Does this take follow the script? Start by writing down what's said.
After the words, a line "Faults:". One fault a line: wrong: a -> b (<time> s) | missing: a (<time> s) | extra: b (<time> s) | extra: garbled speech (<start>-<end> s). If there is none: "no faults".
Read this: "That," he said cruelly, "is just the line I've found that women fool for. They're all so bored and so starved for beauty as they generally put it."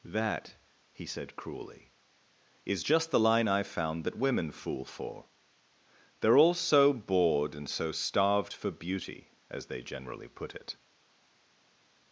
"That," he said cruelly, "is just the line I've found that women fool for. They're all so bored and so starved for beauty as they generally put it."
Faults:
no faults